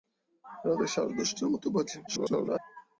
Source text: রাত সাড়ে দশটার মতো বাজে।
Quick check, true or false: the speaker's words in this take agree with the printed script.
false